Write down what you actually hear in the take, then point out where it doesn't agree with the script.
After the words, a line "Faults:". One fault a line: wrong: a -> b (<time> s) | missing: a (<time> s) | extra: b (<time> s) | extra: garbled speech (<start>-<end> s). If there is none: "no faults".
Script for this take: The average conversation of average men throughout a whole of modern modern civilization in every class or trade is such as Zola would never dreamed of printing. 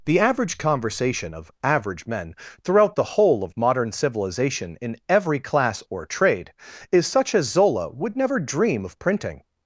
The average conversation of average men throughout the whole of modern civilization in every class or trade is such as Zola would never dream of printing.
Faults:
wrong: a -> the (3.0 s)
missing: modern (3.9 s)
wrong: dreamed -> dream (8.4 s)